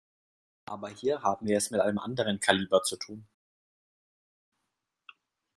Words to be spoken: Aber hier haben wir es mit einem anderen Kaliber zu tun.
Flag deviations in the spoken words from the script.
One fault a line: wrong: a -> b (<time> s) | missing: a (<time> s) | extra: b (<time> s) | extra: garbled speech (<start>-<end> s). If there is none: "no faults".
no faults